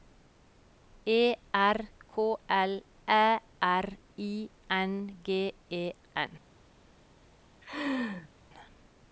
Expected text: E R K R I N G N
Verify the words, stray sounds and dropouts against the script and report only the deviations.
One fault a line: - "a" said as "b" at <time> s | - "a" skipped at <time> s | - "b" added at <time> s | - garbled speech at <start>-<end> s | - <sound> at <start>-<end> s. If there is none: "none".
- "L Æ" added at 2.5 s
- "E" added at 5.7 s
- laugh at 7.6-8.3 s